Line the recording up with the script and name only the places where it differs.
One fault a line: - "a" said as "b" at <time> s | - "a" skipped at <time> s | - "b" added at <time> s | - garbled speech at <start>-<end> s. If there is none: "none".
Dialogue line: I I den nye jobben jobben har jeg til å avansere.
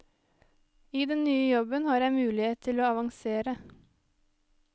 - "I" skipped at 1.1 s
- "jobben" skipped at 1.9 s
- "mulighet" added at 2.2 s